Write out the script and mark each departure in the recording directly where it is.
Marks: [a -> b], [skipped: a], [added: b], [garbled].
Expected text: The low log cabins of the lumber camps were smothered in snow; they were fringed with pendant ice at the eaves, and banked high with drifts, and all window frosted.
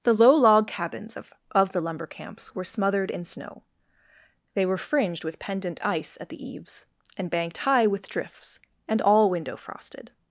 The low log cabins of [added: of] the lumber camps were smothered in snow; they were fringed with pendant ice at the eaves, and banked high with drifts, and all window frosted.